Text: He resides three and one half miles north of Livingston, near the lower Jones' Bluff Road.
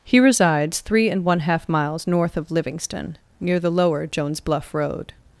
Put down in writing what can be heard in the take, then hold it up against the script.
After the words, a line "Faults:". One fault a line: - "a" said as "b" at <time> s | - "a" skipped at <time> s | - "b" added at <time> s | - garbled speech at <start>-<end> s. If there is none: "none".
He resides three and one half miles north of Livingston, near the lower Jones' Bluff Road.
Faults:
none